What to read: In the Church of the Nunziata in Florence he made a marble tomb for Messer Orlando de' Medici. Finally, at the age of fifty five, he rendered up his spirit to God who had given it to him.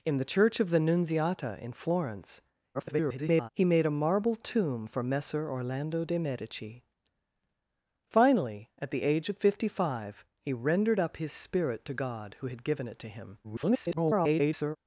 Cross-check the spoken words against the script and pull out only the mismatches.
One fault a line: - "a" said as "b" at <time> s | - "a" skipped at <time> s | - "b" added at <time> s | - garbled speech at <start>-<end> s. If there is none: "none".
- garbled speech at 2.7-3.5 s
- garbled speech at 13.4-14.8 s